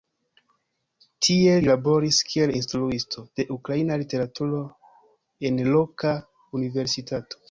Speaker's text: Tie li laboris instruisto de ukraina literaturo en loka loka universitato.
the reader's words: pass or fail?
fail